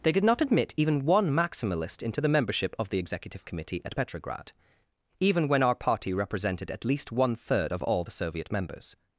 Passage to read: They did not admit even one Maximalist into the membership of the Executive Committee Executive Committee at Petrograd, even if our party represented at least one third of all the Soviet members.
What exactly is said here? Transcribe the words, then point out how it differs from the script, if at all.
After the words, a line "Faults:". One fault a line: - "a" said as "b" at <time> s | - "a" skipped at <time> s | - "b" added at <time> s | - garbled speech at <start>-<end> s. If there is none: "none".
They did not admit even one Maximalist into the membership of the Executive Committee at Petrograd, even when our party represented at least one third of all the Soviet members.
Faults:
- "Executive Committee" skipped at 3.8 s
- "if" said as "when" at 5.5 s